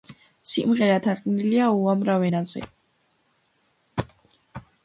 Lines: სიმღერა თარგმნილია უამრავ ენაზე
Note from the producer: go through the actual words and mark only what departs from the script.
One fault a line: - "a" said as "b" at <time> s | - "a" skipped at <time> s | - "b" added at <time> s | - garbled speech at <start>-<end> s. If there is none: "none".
none